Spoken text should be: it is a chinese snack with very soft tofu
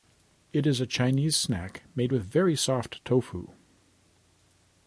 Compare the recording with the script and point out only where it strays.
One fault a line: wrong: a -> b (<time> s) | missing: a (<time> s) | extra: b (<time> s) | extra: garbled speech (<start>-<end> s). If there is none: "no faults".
extra: made (1.9 s)